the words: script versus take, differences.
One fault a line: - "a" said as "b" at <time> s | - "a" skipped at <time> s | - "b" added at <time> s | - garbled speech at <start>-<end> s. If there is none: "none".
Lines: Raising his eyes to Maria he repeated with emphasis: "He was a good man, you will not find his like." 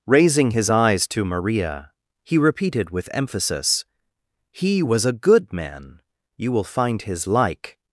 - "not" skipped at 6.6 s